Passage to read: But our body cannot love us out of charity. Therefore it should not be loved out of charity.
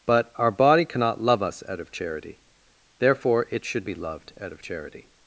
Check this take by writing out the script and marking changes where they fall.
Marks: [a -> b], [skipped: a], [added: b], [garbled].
But our body cannot love us out of charity. Therefore it should [skipped: not] be loved out of charity.